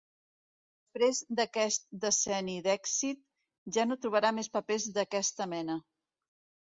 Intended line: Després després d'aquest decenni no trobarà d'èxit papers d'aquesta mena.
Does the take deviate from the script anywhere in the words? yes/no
yes